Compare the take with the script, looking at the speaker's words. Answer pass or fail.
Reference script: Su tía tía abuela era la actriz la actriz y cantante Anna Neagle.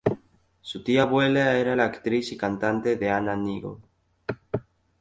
fail